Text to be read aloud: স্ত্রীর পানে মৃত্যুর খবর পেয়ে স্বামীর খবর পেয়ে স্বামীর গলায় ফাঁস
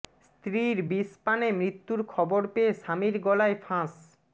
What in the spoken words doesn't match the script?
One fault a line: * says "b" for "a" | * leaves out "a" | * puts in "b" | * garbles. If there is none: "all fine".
* puts in "বিষ"
* leaves out "খবর পেয়ে স্বামীর"